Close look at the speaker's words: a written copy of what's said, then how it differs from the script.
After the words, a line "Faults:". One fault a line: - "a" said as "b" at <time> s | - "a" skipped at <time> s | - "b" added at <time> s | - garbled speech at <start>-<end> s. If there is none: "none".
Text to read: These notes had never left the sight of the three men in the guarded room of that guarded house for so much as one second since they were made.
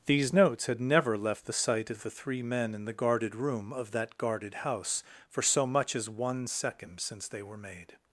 These notes had never left the sight of the three men in the guarded room of that guarded house for so much as one second since they were made.
Faults:
none